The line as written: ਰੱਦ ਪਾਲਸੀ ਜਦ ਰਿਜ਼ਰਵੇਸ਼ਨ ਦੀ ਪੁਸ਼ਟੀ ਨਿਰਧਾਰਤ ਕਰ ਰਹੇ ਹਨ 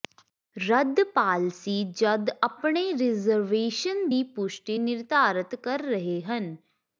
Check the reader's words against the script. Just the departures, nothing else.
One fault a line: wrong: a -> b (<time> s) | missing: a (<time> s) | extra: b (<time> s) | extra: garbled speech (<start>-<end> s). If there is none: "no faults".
extra: ਆਪਣੇ (2.4 s)